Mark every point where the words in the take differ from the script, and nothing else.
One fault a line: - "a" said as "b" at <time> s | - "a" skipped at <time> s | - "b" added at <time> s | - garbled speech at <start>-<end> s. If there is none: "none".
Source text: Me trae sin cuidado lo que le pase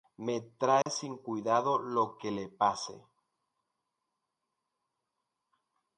none